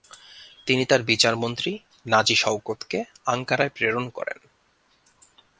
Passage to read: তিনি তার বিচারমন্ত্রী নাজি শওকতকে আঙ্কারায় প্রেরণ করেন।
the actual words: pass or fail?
pass